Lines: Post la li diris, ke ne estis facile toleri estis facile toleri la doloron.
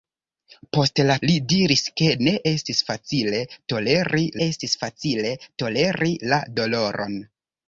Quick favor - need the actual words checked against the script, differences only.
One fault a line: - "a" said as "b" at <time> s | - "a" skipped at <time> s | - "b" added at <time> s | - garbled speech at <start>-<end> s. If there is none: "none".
none